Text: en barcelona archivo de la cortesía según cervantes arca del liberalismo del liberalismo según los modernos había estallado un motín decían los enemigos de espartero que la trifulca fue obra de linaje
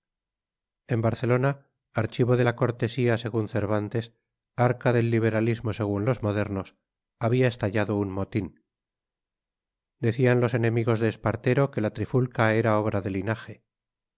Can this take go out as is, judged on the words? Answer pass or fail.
fail